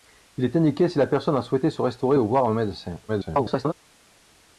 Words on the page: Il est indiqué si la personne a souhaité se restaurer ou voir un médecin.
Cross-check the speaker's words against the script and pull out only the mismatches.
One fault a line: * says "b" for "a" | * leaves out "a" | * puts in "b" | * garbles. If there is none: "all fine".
* garbles